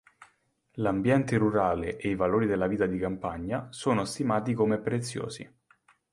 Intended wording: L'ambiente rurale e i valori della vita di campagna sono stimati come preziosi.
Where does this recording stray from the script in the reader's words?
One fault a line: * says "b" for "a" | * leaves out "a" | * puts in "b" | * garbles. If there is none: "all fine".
all fine